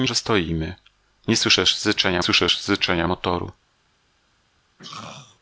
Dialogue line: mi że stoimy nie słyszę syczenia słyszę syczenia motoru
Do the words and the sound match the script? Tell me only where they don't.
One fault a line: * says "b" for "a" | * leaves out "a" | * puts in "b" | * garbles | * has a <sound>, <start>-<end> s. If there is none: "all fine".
* has a throat clearing, 4.8-5.4 s